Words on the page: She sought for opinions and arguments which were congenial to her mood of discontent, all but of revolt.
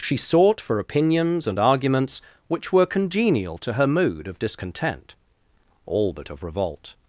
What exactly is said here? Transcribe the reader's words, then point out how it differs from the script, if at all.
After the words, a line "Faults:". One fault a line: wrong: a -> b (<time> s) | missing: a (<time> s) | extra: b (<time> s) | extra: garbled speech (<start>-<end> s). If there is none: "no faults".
She sought for opinions and arguments which were congenial to her mood of discontent, all but of revolt.
Faults:
no faults